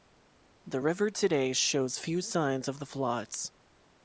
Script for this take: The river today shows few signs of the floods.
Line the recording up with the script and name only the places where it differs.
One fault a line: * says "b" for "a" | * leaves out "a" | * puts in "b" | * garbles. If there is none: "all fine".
all fine